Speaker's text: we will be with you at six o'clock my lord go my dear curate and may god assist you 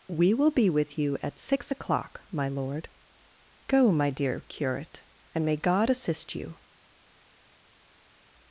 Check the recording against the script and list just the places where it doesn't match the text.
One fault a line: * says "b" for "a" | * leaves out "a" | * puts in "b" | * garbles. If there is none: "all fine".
all fine